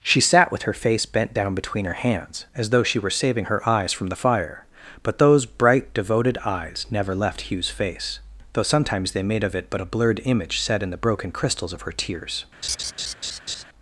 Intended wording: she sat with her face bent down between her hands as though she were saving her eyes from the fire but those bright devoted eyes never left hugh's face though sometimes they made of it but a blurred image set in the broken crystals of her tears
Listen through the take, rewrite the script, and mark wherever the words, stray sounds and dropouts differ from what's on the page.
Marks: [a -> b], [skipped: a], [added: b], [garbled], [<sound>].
she sat with her face bent down between her hands as though she were saving her eyes from the fire but those bright devoted eyes never left hugh's face though sometimes they made of it but a blurred image set in the broken crystals of her tears [laugh]